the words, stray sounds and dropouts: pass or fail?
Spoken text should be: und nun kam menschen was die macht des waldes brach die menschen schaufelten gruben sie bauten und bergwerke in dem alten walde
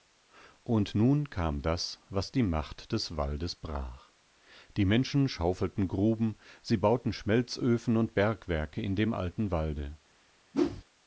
fail